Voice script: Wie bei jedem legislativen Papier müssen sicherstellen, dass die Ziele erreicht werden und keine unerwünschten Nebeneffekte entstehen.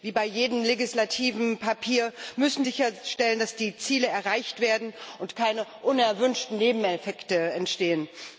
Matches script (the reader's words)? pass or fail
pass